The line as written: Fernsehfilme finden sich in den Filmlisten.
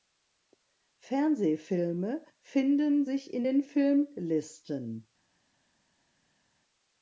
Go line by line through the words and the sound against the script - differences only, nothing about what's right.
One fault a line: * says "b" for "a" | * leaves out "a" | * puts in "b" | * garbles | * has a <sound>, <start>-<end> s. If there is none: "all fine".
all fine